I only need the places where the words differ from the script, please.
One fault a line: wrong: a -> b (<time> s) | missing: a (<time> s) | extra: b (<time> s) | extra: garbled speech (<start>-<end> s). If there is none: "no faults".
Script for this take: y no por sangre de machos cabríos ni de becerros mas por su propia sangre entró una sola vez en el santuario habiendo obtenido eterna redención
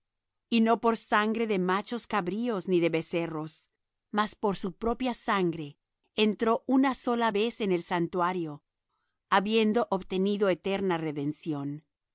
no faults